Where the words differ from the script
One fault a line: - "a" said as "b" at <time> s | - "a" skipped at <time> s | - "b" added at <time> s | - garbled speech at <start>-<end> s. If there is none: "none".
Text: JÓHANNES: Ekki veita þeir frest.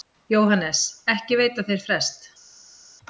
none